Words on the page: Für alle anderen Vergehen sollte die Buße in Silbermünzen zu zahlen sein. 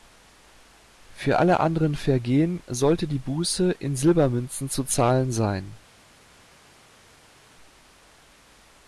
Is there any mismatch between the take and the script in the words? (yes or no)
no